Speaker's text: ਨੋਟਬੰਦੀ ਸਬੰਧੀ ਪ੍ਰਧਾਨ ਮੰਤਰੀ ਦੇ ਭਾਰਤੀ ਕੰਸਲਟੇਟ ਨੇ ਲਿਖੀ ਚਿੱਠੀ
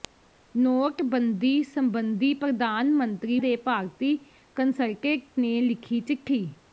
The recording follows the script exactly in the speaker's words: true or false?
true